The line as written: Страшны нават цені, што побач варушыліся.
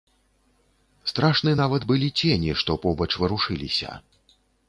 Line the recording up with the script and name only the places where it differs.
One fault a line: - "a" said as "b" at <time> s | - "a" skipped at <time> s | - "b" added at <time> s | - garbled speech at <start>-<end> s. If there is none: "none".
- "былі" added at 1.9 s